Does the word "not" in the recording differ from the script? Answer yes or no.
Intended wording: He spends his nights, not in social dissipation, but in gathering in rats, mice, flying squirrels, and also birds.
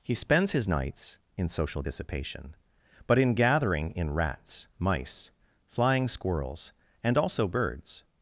yes